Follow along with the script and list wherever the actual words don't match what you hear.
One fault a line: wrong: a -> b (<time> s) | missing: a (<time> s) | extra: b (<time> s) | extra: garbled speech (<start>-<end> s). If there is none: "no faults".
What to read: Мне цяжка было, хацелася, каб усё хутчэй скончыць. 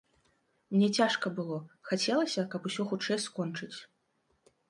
no faults